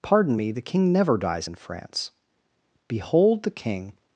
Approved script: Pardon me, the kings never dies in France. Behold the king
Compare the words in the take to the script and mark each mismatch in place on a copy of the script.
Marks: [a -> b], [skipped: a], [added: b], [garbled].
Pardon me, the [kings -> king] never dies in France. Behold the king